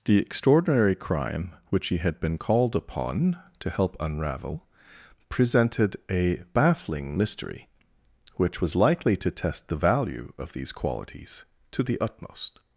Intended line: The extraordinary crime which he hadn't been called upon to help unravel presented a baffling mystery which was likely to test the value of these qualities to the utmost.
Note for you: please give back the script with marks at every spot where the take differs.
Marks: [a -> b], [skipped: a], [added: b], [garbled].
The extraordinary crime which he [hadn't -> had] been called upon to help unravel presented a baffling mystery which was likely to test the value of these qualities to the utmost.